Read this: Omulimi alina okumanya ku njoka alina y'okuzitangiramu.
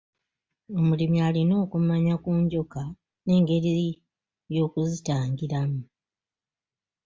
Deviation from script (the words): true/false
true